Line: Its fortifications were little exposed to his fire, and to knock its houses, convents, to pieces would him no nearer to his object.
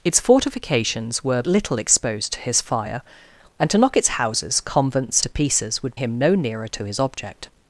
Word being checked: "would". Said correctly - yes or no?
yes